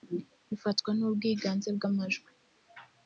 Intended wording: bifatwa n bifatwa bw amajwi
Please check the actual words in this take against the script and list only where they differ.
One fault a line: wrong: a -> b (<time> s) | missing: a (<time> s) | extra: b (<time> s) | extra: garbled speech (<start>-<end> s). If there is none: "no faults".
wrong: bifatwa -> ubwiganze (1.1 s)